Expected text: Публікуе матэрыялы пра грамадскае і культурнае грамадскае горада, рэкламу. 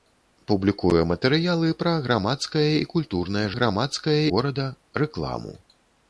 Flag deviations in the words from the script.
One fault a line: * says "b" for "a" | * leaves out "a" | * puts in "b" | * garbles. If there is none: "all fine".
all fine